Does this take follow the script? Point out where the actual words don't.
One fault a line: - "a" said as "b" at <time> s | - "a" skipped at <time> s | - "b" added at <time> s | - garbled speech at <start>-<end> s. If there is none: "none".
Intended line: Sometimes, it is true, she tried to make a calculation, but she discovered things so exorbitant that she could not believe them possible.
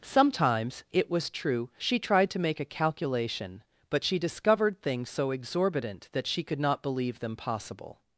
- "is" said as "was" at 1.1 s